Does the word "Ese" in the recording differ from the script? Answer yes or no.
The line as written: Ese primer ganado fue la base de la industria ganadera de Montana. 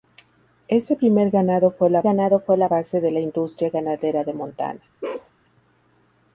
no